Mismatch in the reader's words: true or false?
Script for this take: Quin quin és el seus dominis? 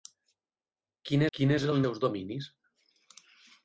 false